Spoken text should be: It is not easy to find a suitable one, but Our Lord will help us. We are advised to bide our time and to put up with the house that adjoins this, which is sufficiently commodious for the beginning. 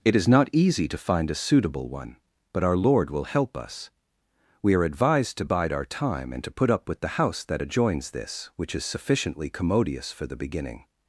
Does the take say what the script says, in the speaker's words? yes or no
yes